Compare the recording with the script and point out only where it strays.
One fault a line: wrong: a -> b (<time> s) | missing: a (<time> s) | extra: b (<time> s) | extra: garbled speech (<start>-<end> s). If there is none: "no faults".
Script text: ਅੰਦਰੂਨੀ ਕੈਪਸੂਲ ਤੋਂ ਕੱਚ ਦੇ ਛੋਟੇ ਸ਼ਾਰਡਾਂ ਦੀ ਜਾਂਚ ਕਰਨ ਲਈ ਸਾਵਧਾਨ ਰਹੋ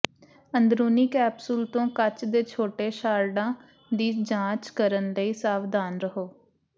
no faults